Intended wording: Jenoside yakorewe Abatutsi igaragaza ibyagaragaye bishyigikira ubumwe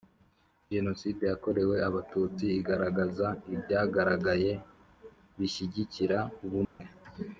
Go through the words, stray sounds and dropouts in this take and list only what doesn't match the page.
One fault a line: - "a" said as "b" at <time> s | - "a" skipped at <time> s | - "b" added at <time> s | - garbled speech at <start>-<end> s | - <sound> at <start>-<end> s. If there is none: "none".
- dropout at 6.6-6.8 s